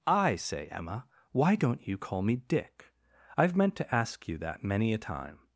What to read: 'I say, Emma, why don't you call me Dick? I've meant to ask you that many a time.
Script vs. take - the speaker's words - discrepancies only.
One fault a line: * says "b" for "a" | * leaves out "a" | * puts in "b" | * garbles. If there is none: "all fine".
all fine